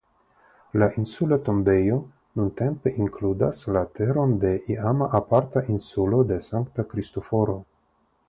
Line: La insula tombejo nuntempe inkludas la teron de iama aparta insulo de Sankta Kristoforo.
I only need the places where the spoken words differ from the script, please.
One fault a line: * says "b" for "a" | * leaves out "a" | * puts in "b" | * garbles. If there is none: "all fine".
all fine